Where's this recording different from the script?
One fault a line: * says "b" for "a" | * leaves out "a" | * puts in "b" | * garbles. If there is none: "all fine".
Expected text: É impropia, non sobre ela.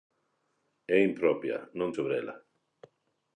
all fine